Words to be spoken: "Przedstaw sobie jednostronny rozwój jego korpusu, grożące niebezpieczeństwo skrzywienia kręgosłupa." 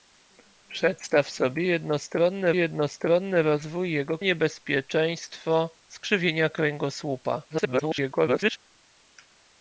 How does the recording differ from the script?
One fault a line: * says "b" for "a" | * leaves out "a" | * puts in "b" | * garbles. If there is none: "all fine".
* puts in "jednostronny"
* leaves out "korpusu grożące"
* garbles